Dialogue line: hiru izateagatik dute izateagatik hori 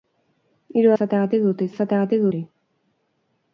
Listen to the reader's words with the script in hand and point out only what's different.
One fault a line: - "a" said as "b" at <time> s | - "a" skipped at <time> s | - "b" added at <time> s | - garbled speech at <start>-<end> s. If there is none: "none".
none